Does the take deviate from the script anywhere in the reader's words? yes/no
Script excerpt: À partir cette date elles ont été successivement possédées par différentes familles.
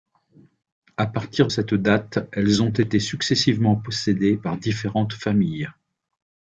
no